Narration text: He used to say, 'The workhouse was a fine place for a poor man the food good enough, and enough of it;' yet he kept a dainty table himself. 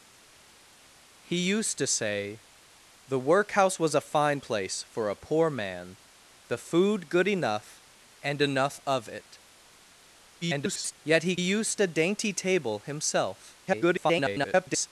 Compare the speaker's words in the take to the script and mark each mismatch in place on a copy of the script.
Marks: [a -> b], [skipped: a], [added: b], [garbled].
He used to say, 'The workhouse was a fine place for a poor man the food good enough, and enough of it;' [garbled] yet he [kept -> used] a dainty table himself. [garbled]